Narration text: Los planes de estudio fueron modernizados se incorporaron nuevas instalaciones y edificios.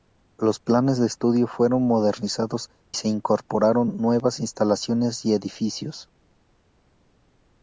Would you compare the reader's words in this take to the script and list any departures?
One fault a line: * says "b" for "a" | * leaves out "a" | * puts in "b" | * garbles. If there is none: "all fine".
all fine